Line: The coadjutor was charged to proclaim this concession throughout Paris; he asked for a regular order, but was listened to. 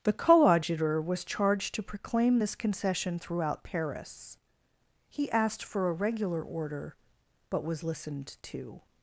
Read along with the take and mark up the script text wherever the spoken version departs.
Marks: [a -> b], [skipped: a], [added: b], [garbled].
The coadjutor was charged to proclaim this concession throughout Paris; he asked for a regular order, but was listened to.